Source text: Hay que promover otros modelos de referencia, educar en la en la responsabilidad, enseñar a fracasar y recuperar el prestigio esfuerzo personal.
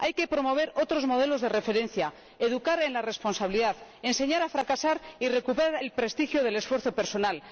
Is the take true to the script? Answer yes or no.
no